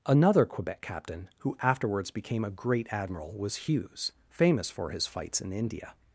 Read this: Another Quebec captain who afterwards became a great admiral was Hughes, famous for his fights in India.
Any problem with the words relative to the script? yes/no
no